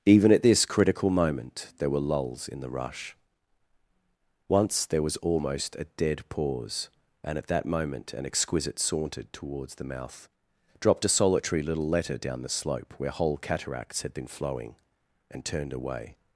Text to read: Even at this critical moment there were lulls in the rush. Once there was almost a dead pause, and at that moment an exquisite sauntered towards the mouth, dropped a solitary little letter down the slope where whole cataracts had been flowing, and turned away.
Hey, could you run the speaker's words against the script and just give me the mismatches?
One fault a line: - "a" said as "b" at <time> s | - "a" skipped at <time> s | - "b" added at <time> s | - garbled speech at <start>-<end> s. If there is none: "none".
none